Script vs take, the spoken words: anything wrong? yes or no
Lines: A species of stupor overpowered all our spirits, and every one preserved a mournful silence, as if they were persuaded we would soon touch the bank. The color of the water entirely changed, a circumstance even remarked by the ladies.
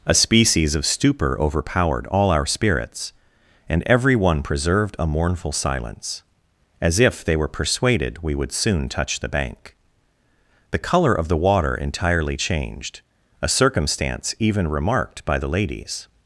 no